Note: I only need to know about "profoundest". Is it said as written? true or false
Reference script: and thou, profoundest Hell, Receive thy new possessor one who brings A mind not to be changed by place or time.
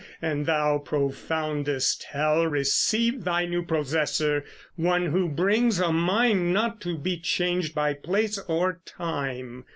true